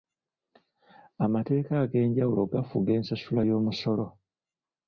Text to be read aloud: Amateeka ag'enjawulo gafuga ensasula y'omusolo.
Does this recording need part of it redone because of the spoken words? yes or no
no